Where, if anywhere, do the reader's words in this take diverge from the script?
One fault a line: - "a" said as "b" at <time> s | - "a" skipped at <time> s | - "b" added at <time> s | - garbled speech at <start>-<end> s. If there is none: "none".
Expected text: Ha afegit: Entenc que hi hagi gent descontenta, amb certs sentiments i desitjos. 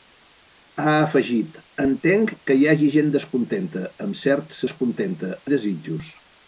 - "sentiments" said as "descontenta" at 4.7 s